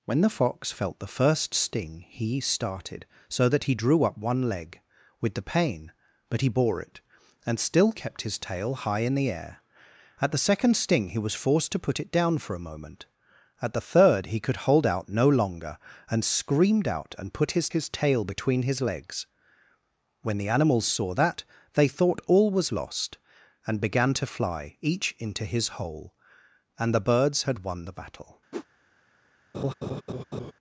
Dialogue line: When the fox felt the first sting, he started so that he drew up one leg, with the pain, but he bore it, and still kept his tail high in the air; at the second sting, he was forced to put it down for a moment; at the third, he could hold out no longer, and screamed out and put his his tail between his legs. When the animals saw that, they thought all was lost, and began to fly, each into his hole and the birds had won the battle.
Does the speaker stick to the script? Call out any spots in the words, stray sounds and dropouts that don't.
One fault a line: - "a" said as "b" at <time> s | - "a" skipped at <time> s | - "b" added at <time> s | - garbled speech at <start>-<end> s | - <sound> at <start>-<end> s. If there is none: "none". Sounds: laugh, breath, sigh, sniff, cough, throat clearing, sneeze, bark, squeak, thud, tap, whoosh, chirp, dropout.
- whoosh at 28.5-28.7 s
- laugh at 29.5-30.5 s